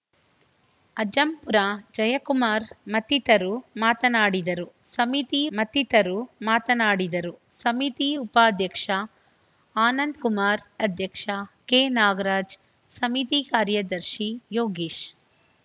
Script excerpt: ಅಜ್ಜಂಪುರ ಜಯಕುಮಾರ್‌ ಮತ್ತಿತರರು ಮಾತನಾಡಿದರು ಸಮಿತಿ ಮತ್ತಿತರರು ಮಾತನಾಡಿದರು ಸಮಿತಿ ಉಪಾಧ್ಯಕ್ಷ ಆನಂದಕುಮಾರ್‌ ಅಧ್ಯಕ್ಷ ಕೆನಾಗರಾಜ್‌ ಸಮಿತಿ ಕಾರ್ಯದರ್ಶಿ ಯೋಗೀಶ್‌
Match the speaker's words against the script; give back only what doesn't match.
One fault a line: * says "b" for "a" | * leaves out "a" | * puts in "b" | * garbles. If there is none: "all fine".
all fine